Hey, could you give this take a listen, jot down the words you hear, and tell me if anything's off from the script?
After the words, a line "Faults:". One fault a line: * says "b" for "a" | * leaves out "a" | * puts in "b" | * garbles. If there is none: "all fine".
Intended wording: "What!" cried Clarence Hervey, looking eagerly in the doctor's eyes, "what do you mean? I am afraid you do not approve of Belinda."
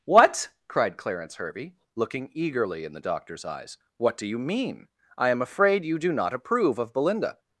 "What!" cried Clarence Hervey, looking eagerly in the doctor's eyes, "what do you mean? I am afraid you do not approve of Belinda."
Faults:
all fine